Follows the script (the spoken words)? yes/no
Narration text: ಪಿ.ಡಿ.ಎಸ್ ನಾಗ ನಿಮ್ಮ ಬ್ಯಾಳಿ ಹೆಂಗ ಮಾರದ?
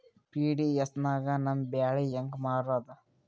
no